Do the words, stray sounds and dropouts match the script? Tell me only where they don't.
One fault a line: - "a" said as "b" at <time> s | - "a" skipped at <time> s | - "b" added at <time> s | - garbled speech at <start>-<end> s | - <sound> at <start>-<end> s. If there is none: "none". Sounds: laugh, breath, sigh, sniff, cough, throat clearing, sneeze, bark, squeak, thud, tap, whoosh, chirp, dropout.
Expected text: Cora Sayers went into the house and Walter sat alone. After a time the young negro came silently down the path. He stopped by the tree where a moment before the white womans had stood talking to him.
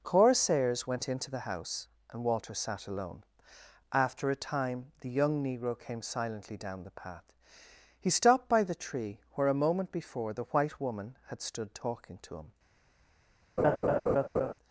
- "womans" said as "woman" at 10.8 s
- laugh at 13.6-14.5 s